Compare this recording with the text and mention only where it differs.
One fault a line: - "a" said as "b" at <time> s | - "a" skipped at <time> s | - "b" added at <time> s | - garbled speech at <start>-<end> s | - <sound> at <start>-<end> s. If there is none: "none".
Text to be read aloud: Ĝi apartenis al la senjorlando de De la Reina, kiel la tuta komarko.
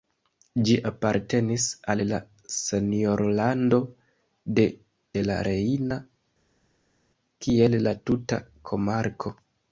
none